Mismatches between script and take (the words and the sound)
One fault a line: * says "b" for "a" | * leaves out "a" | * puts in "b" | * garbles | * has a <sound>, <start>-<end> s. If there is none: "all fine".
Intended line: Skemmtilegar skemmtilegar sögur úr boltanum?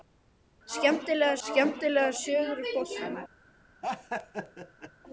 * has a laugh, 3.8-4.9 s